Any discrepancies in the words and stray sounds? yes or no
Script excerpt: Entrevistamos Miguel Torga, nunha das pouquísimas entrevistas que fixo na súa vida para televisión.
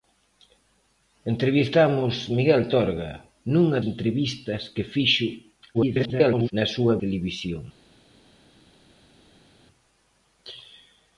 yes